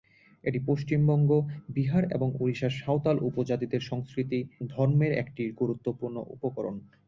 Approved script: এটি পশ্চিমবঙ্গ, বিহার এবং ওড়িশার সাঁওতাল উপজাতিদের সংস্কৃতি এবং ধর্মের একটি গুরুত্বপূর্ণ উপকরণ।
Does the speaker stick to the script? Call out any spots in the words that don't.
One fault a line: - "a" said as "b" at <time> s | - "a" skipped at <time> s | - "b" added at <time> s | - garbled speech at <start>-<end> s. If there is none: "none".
- "এবং" skipped at 4.4 s